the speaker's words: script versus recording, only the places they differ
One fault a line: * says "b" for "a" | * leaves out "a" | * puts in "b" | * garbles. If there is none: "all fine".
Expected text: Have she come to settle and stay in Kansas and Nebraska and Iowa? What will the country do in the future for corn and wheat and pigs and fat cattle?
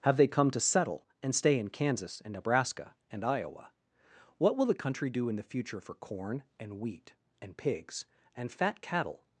* says "they" for "she"